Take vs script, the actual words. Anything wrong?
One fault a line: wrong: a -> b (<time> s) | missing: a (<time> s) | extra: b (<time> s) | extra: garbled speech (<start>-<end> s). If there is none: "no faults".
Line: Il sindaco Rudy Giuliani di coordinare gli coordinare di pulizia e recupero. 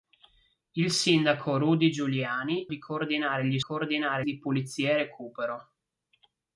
no faults